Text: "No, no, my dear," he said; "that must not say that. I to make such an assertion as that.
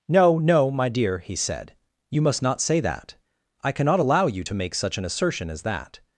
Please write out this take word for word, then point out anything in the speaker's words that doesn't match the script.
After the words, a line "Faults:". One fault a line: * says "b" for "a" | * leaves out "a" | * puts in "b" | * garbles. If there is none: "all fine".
"No, no, my dear," he said; "you must not say that. I cannot allow you to make such an assertion as that.
Faults:
* says "you" for "that"
* puts in "cannot allow you"